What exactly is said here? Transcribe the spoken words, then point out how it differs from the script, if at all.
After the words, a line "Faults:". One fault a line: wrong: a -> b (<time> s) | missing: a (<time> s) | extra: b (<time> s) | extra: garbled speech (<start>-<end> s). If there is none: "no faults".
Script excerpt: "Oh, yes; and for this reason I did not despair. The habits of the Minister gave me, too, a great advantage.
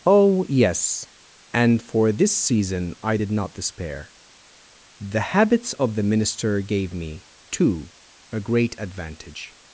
"Oh, yes; and for this season I did not despair. The habits of the Minister gave me, too, a great advantage.
Faults:
wrong: reason -> season (2.4 s)